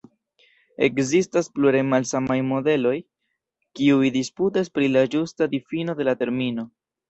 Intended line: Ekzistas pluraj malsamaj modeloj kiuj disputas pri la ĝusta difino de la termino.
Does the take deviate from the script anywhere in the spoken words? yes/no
no